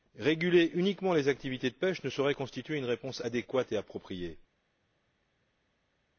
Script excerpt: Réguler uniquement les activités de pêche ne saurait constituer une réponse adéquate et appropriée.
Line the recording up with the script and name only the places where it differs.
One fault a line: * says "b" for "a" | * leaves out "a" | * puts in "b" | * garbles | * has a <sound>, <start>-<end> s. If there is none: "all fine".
all fine